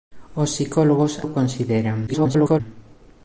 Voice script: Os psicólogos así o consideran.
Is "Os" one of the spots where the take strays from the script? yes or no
no